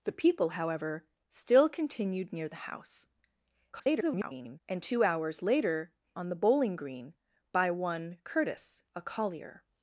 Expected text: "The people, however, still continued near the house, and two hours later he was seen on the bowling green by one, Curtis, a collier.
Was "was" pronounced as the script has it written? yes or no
no